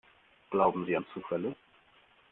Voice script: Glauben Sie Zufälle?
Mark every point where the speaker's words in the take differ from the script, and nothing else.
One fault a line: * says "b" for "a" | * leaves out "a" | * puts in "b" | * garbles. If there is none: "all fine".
* puts in "an"